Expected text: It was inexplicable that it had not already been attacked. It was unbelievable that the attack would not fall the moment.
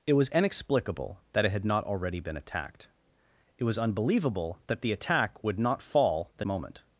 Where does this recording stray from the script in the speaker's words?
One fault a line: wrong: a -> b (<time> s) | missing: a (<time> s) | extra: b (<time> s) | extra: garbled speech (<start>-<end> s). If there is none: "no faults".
no faults